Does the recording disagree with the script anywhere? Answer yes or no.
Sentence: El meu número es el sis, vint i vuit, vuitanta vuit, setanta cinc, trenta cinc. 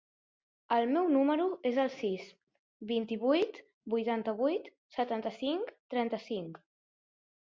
no